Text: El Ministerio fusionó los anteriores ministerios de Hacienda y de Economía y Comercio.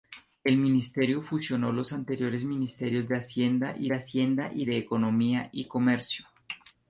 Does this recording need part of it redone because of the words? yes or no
yes